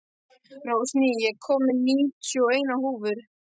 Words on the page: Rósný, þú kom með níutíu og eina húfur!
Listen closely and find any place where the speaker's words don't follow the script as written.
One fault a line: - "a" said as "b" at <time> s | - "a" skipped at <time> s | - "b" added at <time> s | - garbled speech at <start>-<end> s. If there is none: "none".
- "þú" said as "ég" at 1.3 s